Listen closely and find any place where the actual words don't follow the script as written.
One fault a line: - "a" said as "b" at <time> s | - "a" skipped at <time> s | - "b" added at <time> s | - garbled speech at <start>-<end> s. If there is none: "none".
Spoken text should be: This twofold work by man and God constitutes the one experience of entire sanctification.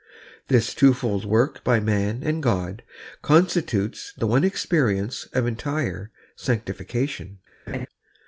none